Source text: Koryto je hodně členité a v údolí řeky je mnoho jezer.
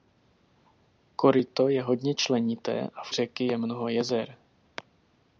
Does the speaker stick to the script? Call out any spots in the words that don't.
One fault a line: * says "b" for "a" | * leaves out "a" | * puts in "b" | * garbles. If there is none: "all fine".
* leaves out "údolí"